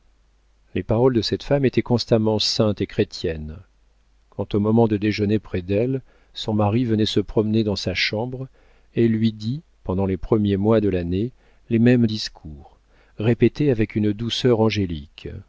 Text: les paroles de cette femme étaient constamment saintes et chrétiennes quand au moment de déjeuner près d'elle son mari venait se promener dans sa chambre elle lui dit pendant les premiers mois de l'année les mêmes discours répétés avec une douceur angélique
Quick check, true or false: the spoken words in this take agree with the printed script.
true